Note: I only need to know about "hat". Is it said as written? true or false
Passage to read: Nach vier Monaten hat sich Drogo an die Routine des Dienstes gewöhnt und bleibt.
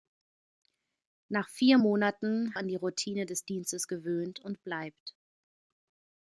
false